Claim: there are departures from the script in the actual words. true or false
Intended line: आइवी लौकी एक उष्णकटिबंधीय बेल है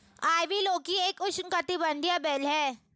false